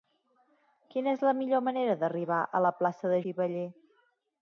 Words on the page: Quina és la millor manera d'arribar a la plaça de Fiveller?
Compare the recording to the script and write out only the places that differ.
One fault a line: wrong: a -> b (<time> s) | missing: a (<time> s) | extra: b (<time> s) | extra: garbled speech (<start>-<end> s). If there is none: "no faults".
no faults